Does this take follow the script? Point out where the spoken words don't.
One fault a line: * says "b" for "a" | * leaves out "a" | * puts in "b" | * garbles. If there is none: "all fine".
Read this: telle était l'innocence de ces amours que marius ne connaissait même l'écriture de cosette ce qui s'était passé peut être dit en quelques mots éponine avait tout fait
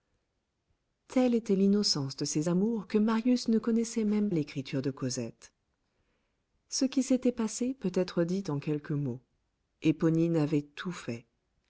all fine